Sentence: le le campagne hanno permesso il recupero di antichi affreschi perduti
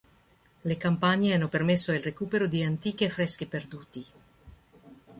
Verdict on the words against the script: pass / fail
fail